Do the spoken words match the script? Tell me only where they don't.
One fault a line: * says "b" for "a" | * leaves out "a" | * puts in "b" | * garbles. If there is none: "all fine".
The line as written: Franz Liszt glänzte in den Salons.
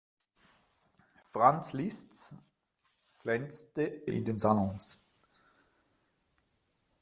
all fine